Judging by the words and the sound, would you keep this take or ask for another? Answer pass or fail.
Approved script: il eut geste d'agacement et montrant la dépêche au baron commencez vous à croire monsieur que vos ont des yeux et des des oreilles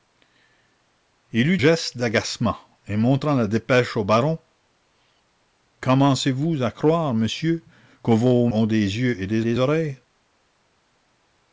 pass